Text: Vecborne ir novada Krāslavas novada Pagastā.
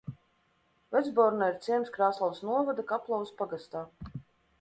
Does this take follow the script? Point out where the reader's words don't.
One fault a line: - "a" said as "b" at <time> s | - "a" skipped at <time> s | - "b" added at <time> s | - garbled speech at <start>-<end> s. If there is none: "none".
- "novada" said as "ciems" at 1.6 s
- "Kaplavas" added at 2.9 s